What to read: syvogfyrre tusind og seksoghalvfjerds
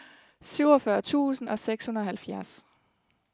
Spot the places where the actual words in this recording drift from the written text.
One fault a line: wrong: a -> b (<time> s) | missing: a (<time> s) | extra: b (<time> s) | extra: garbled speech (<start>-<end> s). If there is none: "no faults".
no faults